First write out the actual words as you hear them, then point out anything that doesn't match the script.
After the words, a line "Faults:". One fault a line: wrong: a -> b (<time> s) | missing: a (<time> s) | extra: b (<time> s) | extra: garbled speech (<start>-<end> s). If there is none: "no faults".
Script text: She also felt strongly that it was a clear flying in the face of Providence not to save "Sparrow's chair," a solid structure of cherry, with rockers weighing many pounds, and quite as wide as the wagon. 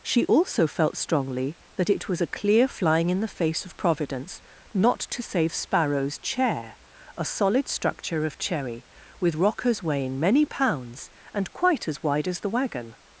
She also felt strongly that it was a clear flying in the face of Providence not to save "Sparrow's chair," a solid structure of cherry, with rockers weighing many pounds, and quite as wide as the wagon.
Faults:
no faults